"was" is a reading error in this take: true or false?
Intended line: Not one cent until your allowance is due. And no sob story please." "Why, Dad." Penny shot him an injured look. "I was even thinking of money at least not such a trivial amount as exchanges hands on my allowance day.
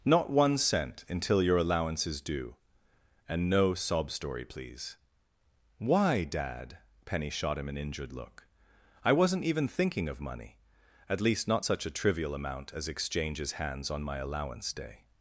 true